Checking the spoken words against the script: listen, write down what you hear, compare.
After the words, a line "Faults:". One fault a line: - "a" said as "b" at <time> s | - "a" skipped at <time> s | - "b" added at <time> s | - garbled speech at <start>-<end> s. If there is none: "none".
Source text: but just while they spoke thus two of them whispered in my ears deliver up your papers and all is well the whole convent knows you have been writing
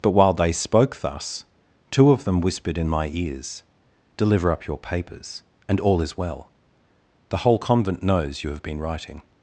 but while they spoke thus two of them whispered in my ears deliver up your papers and all is well the whole convent knows you have been writing
Faults:
- "just" skipped at 0.1 s